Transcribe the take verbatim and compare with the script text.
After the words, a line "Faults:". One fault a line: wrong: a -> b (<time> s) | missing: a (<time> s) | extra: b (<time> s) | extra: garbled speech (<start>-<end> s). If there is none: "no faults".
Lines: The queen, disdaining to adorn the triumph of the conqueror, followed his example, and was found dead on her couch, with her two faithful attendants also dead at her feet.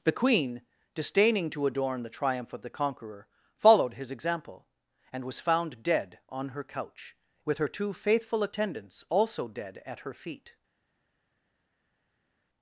The queen, disdaining to adorn the triumph of the conqueror, followed his example, and was found dead on her couch, with her two faithful attendants also dead at her feet.
Faults:
no faults